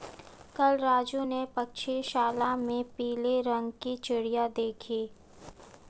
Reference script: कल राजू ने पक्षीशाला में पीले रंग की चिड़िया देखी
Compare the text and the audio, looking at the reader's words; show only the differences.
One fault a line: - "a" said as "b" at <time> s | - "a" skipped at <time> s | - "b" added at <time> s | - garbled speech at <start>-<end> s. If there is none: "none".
none